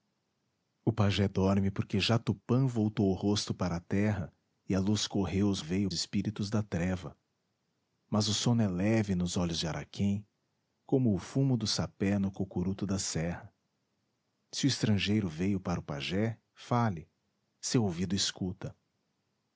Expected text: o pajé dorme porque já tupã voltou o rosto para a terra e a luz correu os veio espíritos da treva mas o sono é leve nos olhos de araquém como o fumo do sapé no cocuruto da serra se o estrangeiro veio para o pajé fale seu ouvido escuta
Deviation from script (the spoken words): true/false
false